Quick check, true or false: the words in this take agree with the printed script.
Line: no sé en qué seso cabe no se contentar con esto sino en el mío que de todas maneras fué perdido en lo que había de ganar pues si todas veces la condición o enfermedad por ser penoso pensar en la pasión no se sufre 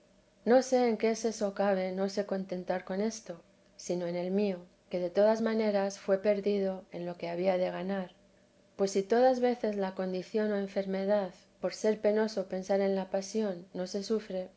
true